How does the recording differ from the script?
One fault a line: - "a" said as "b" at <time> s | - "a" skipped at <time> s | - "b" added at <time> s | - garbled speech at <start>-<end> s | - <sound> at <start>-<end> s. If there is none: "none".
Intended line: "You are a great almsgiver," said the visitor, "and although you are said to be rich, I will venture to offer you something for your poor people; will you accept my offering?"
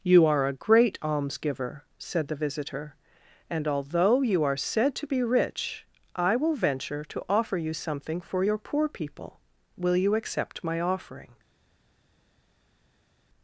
none